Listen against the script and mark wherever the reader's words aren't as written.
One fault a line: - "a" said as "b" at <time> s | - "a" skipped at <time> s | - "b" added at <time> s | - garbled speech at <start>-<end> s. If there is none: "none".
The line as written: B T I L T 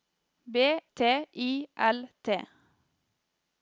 none